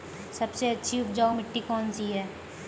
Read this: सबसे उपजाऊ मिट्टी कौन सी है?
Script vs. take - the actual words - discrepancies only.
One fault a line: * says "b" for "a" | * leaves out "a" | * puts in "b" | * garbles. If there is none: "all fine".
* puts in "अच्छी"